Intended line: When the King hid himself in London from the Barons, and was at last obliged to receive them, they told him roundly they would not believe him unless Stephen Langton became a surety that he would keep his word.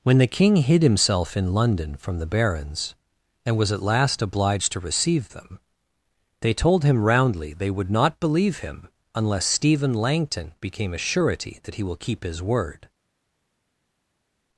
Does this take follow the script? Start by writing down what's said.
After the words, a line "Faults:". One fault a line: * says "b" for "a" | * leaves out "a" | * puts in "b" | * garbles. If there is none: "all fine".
When the King hid himself in London from the Barons, and was at last obliged to receive them, they told him roundly they would not believe him unless Stephen Langton became a surety that he will keep his word.
Faults:
* says "will" for "would"